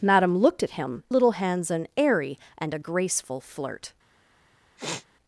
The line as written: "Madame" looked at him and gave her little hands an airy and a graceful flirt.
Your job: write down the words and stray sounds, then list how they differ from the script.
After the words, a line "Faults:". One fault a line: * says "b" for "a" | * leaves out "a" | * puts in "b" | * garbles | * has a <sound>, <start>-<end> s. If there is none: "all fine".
"Madame" looked at him little hands an airy and a graceful flirt.
Faults:
* leaves out "and gave her"
* has a sniff, 4.8-5.1 s